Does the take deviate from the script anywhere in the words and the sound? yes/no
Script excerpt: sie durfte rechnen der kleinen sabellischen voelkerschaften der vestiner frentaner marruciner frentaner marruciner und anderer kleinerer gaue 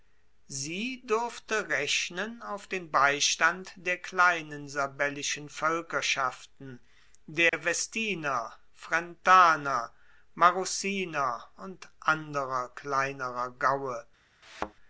yes